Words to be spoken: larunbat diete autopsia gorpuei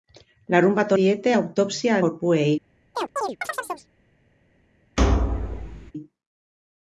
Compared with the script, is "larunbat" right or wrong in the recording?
right